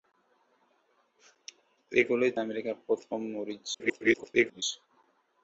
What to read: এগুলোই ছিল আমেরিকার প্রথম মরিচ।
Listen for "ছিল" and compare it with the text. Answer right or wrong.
wrong